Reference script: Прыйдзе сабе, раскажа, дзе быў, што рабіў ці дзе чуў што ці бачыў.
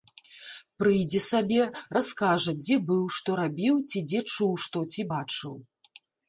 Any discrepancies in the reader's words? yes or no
no